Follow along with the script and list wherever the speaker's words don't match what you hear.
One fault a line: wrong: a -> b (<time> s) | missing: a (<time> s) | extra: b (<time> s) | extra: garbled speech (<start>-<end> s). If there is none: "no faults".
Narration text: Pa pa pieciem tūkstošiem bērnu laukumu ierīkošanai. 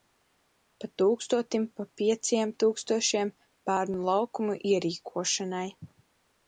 extra: tūkstotim (1.0 s)